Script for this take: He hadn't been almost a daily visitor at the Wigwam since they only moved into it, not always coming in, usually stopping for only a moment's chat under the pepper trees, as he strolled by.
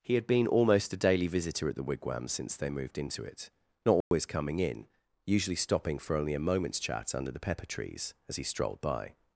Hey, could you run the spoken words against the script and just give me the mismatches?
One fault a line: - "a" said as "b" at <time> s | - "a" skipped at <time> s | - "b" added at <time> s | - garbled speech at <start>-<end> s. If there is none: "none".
- "hadn't" said as "had" at 0.1 s
- "only" skipped at 2.7 s